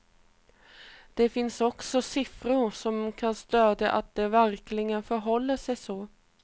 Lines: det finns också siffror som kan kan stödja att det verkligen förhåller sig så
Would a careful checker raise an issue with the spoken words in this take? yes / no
yes